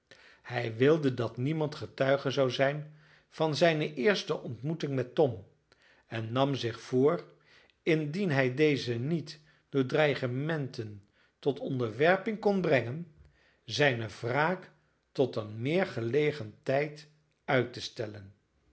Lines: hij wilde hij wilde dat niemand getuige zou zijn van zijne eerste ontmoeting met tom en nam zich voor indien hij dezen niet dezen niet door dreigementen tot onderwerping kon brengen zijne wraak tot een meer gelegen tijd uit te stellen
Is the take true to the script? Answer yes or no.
no